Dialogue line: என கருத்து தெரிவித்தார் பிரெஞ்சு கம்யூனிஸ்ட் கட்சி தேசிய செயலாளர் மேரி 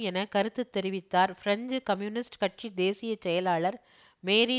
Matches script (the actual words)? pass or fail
pass